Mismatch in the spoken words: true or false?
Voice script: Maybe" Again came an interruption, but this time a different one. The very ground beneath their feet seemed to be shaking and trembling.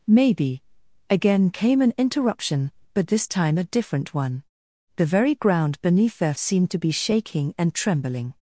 true